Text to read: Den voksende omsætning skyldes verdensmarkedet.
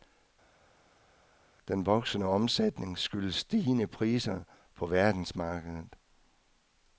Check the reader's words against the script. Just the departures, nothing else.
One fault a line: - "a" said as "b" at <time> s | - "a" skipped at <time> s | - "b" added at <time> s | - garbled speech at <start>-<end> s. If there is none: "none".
- "stigende priser på" added at 3.4 s